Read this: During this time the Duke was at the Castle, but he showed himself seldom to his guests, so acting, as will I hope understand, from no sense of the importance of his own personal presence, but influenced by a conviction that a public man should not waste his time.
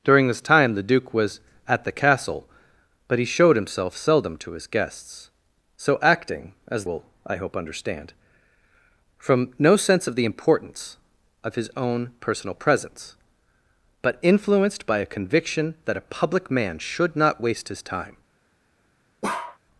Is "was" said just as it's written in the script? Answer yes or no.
yes